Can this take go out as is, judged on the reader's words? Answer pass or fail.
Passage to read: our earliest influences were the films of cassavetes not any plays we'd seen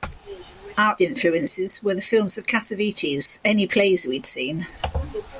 fail